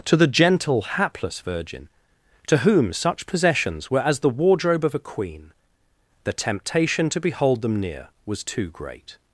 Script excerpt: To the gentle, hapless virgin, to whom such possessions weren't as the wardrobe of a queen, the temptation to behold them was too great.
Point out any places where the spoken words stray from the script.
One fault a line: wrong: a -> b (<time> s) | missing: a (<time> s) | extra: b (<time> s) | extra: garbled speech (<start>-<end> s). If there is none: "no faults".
wrong: weren't -> were (3.9 s)
extra: near (7.8 s)